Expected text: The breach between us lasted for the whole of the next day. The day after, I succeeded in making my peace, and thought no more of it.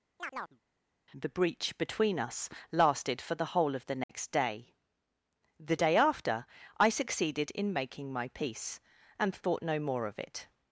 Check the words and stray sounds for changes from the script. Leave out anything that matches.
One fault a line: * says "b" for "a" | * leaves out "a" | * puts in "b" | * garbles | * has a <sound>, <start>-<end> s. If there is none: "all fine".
* has a chirp, 0.2-0.6 s
* has a dropout, 4.0-4.1 s